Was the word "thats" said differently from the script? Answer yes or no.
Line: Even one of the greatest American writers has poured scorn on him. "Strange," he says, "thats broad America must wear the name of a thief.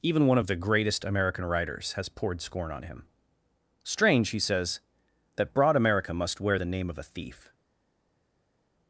yes